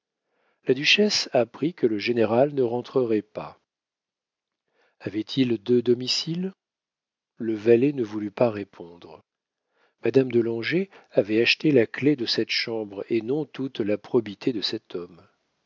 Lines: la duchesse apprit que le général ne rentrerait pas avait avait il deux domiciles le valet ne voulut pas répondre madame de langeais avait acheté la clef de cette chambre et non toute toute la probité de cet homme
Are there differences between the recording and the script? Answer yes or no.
yes